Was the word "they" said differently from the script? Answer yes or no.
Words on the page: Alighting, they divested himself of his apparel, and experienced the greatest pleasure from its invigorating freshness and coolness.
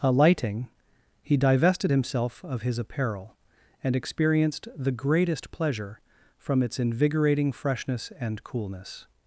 yes